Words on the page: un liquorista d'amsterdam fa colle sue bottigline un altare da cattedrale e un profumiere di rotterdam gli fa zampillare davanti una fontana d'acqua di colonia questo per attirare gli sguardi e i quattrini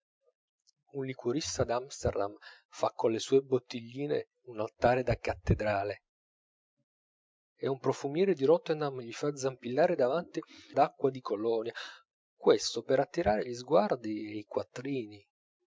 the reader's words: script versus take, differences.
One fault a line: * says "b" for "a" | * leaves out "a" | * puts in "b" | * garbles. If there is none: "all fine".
* leaves out "una fontana"